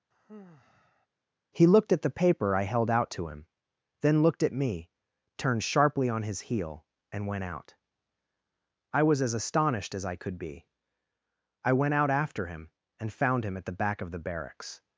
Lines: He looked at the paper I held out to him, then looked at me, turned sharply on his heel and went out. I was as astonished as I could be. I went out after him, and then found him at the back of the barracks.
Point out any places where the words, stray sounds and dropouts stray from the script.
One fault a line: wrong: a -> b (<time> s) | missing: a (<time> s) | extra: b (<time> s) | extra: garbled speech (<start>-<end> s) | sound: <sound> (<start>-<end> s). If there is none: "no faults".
sound: sigh (0.1-1.1 s)
missing: then (13.1 s)